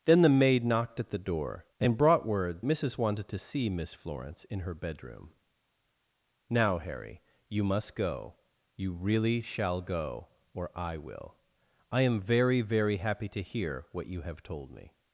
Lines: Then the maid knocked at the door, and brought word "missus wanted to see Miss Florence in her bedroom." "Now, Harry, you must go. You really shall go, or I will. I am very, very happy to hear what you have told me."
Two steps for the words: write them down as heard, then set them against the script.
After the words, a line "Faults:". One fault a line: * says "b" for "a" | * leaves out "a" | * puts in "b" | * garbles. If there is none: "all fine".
Then the maid knocked at the door, and brought word "missus wanted to see Miss Florence in her bedroom." "Now, Harry, you must go. You really shall go, or I will. I am very, very happy to hear what you have told me."
Faults:
all fine